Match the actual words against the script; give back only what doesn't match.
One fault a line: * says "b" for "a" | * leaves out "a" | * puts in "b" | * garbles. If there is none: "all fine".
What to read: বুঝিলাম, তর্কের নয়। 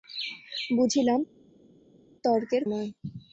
all fine